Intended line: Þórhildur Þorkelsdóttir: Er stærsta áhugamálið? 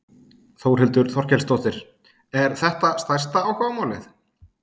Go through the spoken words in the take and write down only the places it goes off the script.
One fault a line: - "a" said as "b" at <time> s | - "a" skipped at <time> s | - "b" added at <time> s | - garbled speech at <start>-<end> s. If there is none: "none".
- "þetta" added at 2.6 s